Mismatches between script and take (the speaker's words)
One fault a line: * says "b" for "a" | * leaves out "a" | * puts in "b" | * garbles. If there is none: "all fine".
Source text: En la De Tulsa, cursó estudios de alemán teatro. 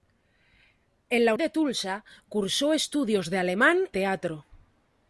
all fine